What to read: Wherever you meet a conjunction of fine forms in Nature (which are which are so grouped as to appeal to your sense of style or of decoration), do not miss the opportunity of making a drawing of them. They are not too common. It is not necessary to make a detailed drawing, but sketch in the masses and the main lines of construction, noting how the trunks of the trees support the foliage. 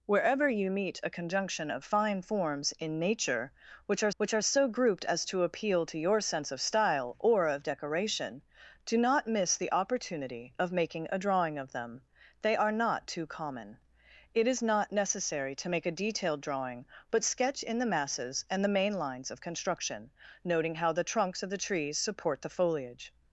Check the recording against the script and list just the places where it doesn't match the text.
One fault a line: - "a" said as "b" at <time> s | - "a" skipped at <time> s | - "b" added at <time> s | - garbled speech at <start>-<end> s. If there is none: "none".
none